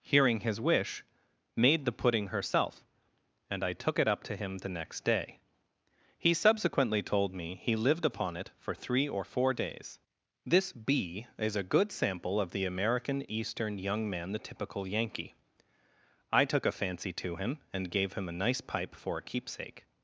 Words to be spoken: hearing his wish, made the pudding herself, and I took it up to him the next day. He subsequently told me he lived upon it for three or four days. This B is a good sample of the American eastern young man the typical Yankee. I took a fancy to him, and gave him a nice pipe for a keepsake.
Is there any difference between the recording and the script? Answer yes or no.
no